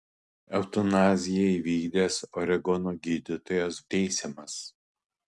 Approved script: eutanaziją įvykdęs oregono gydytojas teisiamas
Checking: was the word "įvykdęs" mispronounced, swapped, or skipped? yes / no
no